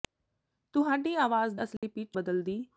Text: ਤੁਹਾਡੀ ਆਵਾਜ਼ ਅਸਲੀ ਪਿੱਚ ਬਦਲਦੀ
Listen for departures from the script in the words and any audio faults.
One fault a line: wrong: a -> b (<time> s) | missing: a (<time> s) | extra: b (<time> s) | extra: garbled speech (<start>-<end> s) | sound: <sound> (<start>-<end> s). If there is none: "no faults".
sound: dropout (1.8-1.8 s)